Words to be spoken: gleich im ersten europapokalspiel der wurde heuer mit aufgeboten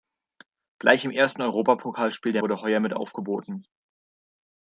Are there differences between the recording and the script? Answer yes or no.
no